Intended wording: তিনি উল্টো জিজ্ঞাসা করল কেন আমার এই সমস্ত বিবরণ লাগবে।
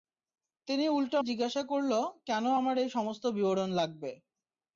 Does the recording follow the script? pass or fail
pass